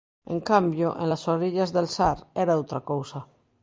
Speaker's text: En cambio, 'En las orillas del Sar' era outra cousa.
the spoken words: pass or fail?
pass